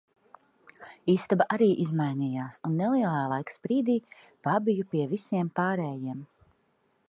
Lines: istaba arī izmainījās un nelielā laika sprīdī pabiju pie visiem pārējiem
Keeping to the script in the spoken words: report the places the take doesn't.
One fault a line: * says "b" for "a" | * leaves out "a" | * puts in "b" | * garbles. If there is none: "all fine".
all fine